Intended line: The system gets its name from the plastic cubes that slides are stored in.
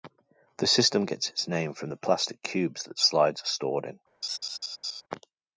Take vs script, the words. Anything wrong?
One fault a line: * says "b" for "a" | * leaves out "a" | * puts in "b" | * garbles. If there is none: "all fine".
all fine